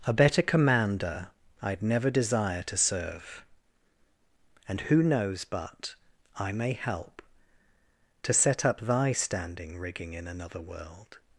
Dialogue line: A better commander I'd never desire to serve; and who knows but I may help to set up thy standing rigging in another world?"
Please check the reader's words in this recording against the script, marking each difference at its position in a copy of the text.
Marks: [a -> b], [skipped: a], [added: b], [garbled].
A better commander I'd never desire to serve; and who knows but I may help to set up thy standing rigging in another world?"